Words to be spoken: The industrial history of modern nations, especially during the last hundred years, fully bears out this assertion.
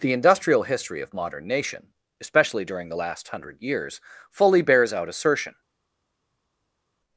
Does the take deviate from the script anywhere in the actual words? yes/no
yes